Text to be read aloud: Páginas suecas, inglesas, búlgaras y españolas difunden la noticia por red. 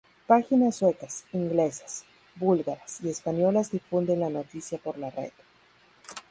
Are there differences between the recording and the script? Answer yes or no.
yes